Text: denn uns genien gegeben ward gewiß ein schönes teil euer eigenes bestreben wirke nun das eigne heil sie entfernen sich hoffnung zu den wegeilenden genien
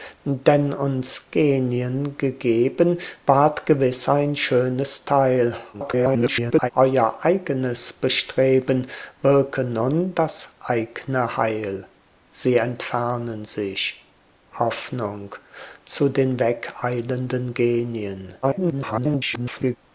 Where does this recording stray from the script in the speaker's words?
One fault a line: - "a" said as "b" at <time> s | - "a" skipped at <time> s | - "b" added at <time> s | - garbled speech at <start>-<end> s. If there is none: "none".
- garbled speech at 5.7-6.7 s
- garbled speech at 18.4-19.8 s